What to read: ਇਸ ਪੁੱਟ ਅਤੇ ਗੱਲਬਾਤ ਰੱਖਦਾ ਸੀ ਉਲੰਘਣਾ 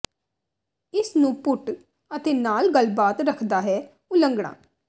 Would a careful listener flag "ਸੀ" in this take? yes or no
yes